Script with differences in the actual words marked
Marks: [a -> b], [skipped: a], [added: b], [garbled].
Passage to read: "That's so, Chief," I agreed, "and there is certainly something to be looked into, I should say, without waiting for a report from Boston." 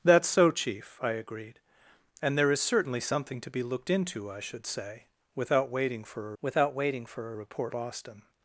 "That's so, Chief," I agreed, "and there is certainly something to be looked into, I should say, without waiting for [added: without waiting for] a report [skipped: from] Boston."